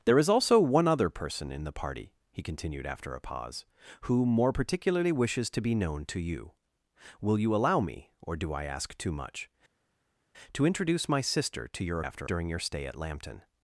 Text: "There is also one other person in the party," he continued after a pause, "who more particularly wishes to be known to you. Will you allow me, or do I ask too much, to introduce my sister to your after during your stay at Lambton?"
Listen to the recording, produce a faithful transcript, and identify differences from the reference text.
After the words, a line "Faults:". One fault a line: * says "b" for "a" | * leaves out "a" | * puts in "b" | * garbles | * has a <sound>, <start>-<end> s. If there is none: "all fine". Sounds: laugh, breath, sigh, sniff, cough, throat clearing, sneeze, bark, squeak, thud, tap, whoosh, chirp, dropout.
"There is also one other person in the party," he continued after a pause, "who more particularly wishes to be known to you. Will you allow me, or do I ask too much, to introduce my sister to your after during your stay at Lambton?"
Faults:
all fine